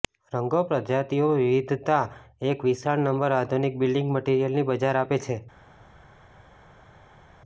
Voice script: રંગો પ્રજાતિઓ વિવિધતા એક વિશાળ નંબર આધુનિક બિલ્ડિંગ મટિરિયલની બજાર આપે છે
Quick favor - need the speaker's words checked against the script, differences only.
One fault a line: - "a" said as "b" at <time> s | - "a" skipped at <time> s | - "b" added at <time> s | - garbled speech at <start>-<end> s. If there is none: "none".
none